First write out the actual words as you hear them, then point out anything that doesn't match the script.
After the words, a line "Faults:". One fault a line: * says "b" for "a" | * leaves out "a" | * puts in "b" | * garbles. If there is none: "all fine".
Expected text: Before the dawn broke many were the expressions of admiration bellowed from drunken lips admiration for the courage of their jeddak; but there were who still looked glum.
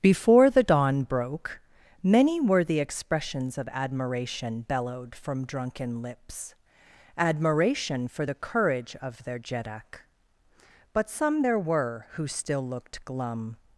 Before the dawn broke many were the expressions of admiration bellowed from drunken lips admiration for the courage of their jeddak; but some there were who still looked glum.
Faults:
* puts in "some"